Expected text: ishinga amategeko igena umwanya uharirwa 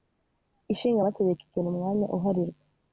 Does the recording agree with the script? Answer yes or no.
yes